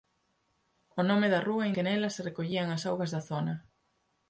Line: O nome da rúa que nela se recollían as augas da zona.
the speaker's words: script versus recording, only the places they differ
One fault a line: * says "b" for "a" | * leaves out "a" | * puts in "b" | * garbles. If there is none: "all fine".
all fine